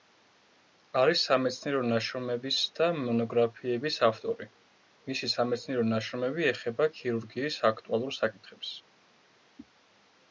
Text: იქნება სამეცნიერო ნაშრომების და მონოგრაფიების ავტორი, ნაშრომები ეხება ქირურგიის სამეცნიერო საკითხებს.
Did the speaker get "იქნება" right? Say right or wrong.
wrong